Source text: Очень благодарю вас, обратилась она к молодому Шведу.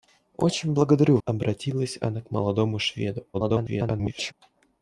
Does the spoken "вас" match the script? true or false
false